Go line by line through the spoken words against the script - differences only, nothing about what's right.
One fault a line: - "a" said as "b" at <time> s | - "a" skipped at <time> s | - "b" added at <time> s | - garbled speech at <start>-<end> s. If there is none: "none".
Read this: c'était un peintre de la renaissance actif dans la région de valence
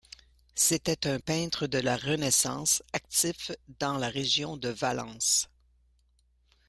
none